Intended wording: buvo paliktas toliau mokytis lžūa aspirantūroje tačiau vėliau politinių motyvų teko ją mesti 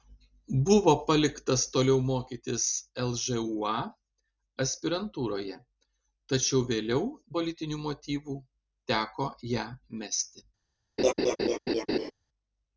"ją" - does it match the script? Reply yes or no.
yes